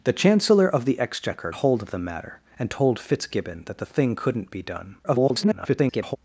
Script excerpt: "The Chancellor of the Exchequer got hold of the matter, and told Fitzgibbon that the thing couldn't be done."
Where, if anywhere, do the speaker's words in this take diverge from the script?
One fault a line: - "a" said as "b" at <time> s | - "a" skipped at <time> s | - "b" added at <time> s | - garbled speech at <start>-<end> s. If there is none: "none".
- "got" skipped at 1.5 s
- garbled speech at 5.0-6.2 s